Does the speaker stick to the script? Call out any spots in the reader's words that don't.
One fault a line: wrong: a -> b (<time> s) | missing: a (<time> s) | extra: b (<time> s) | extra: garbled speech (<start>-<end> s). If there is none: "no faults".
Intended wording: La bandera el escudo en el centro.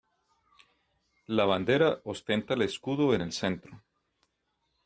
extra: ostenta (2.0 s)